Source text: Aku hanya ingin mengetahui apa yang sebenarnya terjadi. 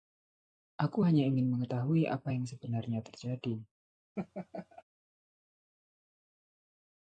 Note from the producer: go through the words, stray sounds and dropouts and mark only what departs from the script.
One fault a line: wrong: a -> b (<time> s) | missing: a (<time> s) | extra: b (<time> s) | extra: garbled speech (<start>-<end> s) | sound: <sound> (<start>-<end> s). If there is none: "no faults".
sound: laugh (4.2-4.8 s)